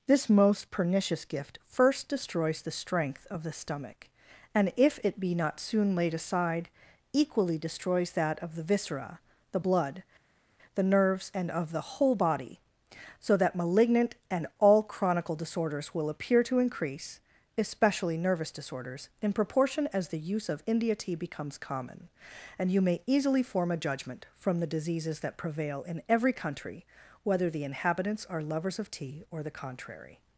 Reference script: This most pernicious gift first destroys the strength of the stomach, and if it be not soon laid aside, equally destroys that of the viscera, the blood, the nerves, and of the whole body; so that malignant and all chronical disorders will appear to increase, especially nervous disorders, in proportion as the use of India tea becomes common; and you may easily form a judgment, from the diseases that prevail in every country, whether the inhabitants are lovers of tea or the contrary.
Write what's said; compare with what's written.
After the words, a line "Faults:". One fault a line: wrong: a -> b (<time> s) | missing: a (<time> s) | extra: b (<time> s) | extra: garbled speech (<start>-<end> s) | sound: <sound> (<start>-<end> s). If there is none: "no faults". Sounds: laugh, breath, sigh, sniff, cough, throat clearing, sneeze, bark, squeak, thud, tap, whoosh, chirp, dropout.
This most pernicious gift first destroys the strength of the stomach, and if it be not soon laid aside, equally destroys that of the viscera, the blood, the nerves, and of the whole body; so that malignant and all chronical disorders will appear to increase, especially nervous disorders, in proportion as the use of India tea becomes common; and you may easily form a judgment, from the diseases that prevail in every country, whether the inhabitants are lovers of tea or the contrary.
Faults:
no faults